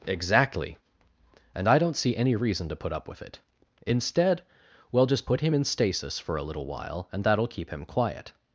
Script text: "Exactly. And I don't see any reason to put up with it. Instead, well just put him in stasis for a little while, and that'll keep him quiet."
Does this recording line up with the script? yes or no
yes